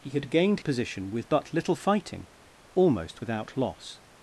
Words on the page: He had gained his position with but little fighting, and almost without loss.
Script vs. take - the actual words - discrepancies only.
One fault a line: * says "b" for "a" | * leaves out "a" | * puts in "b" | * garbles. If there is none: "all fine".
* leaves out "his"
* leaves out "and"